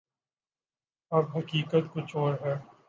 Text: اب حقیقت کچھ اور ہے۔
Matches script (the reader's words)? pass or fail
pass